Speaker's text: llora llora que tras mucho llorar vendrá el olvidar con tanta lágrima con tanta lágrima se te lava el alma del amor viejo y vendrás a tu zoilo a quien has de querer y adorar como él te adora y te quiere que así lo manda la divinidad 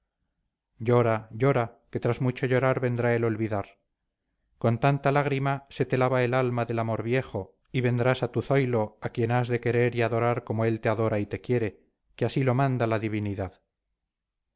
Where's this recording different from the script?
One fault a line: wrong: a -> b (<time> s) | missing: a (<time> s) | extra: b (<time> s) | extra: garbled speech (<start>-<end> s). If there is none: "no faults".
missing: con tanta lágrima (5.7 s)